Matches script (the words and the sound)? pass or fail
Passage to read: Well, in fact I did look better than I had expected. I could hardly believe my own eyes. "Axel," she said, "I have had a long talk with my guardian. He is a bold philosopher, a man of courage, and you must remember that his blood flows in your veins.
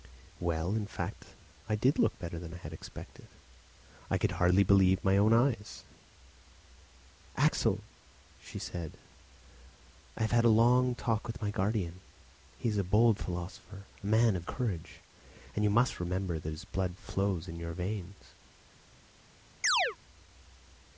fail